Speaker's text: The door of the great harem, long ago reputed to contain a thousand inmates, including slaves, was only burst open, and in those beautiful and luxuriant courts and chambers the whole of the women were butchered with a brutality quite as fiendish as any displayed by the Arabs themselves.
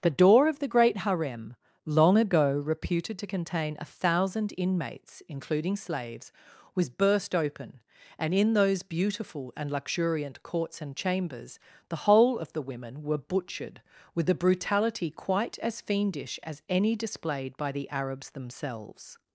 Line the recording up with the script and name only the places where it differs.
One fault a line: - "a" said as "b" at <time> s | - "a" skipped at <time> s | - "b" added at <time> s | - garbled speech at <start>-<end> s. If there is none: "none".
- "only" skipped at 6.9 s